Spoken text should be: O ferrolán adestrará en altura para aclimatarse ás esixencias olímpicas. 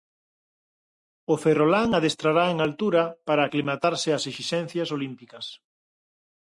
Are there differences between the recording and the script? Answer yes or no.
no